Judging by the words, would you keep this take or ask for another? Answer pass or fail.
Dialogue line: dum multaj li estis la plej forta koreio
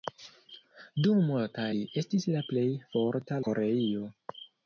pass